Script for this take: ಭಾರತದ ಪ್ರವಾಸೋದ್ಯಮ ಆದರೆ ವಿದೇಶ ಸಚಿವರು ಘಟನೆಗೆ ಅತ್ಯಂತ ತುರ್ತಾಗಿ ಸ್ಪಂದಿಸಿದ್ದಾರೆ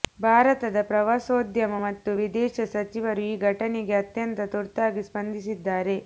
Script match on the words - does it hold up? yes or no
no